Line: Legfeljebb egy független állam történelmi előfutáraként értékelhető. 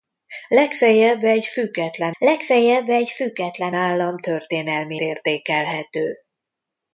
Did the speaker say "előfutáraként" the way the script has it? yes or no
no